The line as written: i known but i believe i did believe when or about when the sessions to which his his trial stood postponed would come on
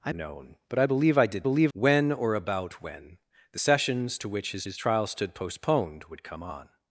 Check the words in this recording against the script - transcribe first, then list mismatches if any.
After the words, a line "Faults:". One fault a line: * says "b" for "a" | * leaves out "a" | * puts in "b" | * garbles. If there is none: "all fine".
i known but i believe i did believe when or about when the sessions to which his his trial stood postponed would come on
Faults:
all fine